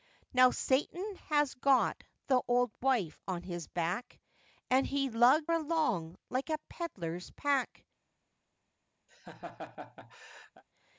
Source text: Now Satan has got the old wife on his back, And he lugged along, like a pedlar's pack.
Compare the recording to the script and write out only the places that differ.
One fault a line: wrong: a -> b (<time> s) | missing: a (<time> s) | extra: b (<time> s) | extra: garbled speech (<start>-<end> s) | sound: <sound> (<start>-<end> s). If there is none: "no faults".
sound: laugh (9.1-10.6 s)